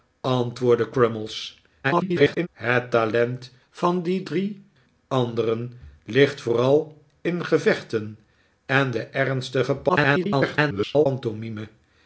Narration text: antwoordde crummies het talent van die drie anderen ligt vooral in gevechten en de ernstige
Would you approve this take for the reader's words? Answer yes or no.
no